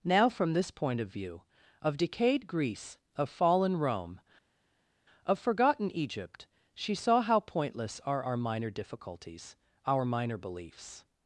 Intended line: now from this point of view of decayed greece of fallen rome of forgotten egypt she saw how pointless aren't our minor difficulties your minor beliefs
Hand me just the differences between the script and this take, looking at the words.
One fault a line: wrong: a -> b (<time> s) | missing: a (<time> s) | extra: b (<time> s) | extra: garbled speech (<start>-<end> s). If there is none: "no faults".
wrong: aren't -> are (8.0 s)
wrong: your -> our (9.8 s)